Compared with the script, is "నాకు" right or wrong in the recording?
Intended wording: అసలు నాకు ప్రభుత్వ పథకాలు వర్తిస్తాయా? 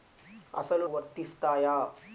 wrong